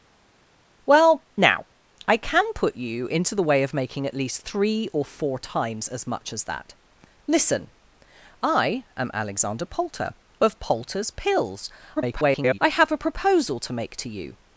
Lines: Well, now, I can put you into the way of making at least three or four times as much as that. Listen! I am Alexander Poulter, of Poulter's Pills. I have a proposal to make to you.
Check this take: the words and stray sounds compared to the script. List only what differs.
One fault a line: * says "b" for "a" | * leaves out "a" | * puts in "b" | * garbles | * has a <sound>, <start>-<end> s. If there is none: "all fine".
* garbles